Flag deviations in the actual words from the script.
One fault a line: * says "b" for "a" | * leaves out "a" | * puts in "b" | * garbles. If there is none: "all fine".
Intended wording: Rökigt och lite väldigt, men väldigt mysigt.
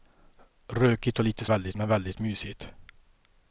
all fine